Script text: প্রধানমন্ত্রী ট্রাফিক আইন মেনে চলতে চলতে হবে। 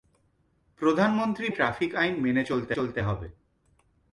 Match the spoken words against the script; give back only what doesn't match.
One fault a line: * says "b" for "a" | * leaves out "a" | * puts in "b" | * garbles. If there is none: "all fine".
all fine